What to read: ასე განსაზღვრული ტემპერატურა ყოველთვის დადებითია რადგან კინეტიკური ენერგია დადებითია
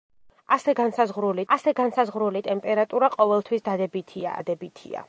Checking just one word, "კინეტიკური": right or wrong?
wrong